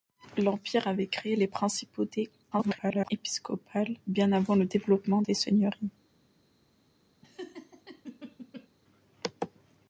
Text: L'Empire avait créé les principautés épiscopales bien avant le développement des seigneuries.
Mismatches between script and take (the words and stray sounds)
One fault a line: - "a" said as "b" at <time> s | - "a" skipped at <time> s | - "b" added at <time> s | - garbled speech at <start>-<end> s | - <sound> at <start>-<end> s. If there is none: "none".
- garbled speech at 2.5-3.1 s
- laugh at 7.2-8.7 s